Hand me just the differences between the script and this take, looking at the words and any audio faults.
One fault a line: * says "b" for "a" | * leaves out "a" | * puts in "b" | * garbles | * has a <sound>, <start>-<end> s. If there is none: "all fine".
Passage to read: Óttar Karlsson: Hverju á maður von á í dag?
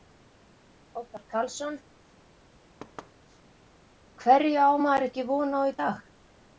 * has a thud, 2.8-3.1 s
* puts in "ekki"